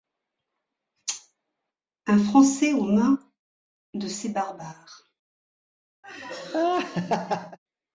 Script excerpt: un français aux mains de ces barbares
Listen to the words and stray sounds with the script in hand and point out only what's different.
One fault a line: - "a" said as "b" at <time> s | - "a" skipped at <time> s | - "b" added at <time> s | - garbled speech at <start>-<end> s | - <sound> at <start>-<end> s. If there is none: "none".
- laugh at 6.0-7.6 s